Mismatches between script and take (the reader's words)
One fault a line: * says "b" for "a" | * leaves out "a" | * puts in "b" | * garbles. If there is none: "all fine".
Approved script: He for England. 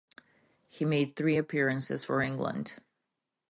* puts in "made three appearances"